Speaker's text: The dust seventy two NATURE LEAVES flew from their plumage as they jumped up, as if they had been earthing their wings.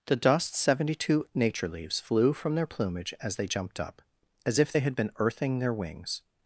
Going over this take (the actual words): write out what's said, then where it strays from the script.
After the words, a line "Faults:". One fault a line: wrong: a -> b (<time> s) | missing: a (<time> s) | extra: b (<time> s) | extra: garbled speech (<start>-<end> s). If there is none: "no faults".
The dust seventy two NATURE LEAVES flew from their plumage as they jumped up, as if they had been earthing their wings.
Faults:
no faults